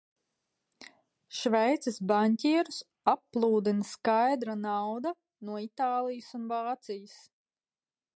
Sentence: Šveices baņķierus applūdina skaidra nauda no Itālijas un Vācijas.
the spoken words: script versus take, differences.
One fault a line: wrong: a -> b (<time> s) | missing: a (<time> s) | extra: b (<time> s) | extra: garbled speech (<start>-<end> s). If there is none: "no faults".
no faults